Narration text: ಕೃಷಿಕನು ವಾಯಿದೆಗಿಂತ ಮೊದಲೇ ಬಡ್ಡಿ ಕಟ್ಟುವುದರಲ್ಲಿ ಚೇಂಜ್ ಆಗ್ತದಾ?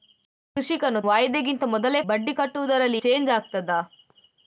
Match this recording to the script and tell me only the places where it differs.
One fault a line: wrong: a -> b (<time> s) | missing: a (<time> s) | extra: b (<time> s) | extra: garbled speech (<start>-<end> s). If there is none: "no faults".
no faults